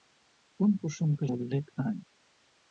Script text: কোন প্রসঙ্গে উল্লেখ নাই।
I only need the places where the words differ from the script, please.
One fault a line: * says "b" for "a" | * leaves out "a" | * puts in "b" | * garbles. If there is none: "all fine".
all fine